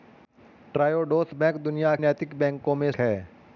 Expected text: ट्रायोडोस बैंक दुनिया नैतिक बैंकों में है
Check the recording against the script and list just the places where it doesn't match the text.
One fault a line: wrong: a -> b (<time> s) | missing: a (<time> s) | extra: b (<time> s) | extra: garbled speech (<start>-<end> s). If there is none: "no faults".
no faults